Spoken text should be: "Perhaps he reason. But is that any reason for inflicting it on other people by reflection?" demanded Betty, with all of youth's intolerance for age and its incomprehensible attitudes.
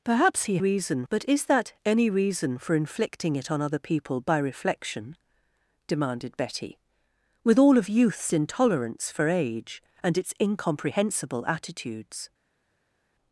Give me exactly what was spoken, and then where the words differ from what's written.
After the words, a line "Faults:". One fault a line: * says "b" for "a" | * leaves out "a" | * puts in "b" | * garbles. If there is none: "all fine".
"Perhaps he reason. But is that any reason for inflicting it on other people by reflection?" demanded Betty, with all of youth's intolerance for age and its incomprehensible attitudes.
Faults:
all fine